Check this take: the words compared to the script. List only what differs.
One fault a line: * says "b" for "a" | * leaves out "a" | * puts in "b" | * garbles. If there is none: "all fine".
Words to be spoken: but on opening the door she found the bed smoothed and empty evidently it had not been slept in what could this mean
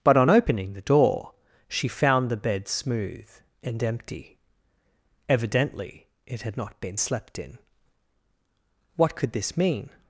* says "smooth" for "smoothed"